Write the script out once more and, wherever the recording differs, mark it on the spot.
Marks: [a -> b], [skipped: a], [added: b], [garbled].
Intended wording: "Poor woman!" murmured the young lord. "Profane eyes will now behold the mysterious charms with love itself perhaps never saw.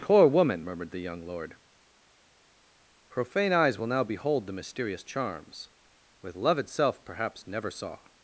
"Poor woman!" murmured the young lord. "Profane eyes will now behold the mysterious charms with love itself perhaps never saw.